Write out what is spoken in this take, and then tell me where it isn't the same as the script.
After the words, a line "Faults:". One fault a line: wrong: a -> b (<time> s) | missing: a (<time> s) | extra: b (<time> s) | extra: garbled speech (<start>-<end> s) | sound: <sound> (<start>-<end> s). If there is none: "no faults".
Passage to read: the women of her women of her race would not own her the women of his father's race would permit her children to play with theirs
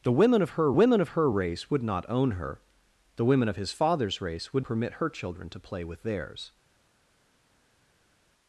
the women of her women of her race would not own her the women of his father's race would permit her children to play with theirs
Faults:
no faults